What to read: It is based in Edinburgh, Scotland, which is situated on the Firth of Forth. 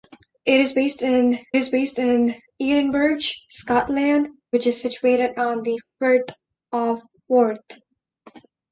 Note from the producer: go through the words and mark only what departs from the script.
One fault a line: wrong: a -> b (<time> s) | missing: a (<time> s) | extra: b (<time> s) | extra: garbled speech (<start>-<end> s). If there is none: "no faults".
extra: is based in (1.6 s)